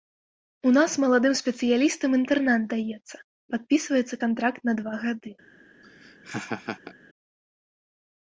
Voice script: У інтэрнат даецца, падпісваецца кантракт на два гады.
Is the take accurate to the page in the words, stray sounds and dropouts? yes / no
no